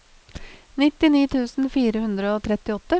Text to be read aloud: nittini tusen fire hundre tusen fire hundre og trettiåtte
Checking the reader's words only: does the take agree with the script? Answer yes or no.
no